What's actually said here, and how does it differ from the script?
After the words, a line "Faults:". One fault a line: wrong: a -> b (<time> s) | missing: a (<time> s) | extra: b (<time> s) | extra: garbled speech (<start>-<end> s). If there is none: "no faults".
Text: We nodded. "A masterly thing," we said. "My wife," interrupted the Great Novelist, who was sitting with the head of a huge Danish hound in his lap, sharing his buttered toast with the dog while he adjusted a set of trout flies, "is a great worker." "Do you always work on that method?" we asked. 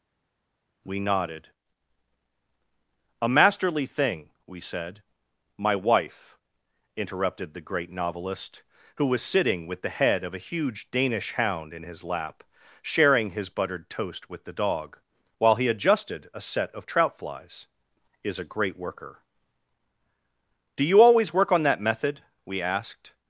We nodded. "A masterly thing," we said. "My wife," interrupted the Great Novelist, who was sitting with the head of a huge Danish hound in his lap, sharing his buttered toast with the dog while he adjusted a set of trout flies, "is a great worker." "Do you always work on that method?" we asked.
Faults:
no faults